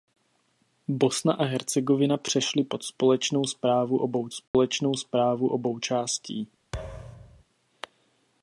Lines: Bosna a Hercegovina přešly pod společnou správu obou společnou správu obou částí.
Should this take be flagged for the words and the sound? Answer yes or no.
yes